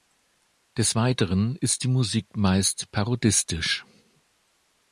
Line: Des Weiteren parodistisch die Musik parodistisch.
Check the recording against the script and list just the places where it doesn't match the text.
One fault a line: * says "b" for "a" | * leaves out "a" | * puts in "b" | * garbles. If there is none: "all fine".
* says "ist" for "parodistisch"
* puts in "meist"